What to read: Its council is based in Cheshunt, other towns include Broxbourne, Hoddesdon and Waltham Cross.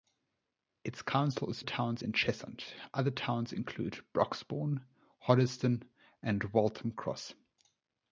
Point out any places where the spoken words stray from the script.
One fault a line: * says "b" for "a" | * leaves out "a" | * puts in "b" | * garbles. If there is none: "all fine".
* says "towns" for "based"